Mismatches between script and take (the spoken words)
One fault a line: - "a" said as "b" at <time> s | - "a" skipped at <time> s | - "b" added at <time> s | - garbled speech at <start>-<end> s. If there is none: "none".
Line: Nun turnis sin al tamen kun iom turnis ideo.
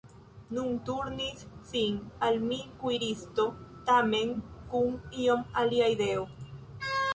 - "mi kuiristo" added at 2.5 s
- "turnis" said as "alia" at 5.7 s